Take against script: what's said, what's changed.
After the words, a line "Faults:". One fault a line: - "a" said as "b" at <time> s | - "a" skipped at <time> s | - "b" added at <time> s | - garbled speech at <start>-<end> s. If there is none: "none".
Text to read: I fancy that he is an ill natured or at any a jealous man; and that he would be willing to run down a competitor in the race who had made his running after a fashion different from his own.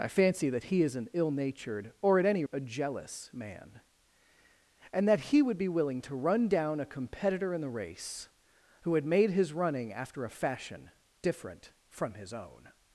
I fancy that he is an ill natured or at any a jealous man; and that he would be willing to run down a competitor in the race who had made his running after a fashion different from his own.
Faults:
none